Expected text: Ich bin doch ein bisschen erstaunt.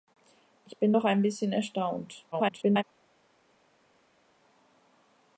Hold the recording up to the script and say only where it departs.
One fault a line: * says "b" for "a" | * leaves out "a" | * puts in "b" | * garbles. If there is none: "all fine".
* garbles